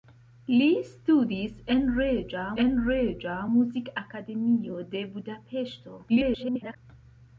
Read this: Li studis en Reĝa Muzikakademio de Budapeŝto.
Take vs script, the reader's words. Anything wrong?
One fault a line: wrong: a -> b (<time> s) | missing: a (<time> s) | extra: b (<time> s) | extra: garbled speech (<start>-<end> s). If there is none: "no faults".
extra: en Reĝa (2.6 s)
extra: garbled speech (6.1-6.8 s)